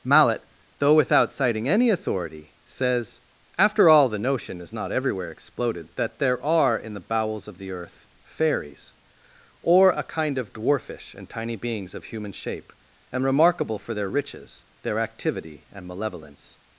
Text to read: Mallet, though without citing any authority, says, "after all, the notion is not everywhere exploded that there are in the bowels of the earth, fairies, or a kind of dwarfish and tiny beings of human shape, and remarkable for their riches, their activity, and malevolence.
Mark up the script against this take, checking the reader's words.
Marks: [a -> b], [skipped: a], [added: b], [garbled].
Mallet, though without citing any authority, says, "after all, the notion is not everywhere exploded that there are in the bowels of the earth, fairies, or a kind of dwarfish and tiny beings of human shape, and remarkable for their riches, their activity, and malevolence.